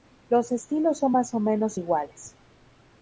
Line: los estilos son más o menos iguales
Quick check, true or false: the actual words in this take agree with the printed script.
true